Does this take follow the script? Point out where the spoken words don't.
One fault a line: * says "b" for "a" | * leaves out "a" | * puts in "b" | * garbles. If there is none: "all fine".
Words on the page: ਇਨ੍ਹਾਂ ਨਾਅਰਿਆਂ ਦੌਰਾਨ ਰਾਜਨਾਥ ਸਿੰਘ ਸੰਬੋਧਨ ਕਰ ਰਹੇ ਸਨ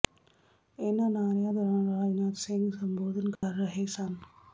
all fine